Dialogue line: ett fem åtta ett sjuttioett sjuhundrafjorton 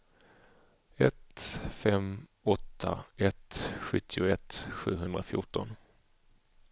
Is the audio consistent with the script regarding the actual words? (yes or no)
yes